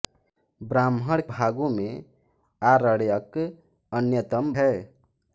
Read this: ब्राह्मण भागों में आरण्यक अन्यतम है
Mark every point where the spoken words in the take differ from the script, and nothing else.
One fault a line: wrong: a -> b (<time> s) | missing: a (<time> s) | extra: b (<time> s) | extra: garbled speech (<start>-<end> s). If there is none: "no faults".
no faults